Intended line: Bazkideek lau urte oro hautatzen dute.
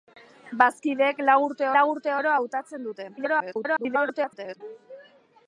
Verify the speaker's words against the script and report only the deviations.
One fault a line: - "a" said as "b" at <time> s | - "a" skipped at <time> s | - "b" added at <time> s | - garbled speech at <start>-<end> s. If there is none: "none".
- "lau urte" added at 1.7 s
- garbled speech at 3.2-4.6 s